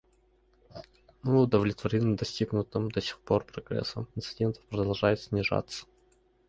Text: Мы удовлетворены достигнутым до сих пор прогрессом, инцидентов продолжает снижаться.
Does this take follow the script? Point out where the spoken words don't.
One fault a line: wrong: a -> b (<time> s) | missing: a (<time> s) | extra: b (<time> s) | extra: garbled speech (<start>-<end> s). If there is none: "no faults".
no faults